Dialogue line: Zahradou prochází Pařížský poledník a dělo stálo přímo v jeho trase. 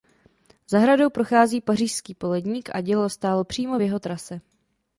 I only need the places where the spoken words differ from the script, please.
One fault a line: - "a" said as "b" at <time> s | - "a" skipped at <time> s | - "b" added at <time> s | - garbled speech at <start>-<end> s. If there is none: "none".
none